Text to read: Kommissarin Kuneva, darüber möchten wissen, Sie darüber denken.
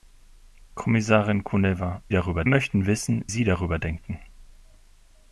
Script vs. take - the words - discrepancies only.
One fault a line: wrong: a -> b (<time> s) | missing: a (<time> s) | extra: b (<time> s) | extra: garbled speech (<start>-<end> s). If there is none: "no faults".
no faults